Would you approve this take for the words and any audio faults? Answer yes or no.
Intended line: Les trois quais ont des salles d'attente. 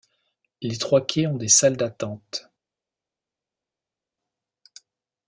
yes